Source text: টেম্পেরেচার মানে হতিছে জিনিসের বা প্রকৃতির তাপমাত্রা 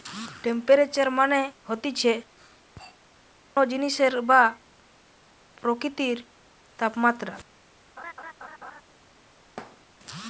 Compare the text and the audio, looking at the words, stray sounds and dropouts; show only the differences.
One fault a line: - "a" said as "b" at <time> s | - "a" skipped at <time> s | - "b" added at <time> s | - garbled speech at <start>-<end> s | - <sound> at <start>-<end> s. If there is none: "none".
- laugh at 8.0-8.8 s
- thud at 9.6-9.9 s